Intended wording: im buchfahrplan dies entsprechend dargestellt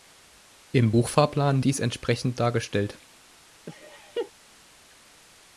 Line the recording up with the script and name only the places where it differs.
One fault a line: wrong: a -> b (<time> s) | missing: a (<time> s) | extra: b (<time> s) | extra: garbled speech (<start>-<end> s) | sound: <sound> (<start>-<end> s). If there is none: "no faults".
sound: laugh (3.7-4.3 s)